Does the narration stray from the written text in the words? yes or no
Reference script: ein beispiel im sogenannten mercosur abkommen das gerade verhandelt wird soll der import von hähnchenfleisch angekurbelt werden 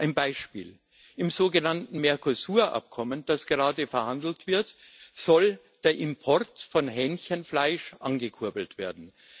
no